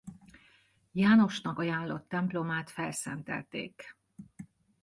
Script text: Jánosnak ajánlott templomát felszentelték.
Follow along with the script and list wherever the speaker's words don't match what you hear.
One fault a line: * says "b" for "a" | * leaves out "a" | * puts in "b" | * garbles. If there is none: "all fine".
all fine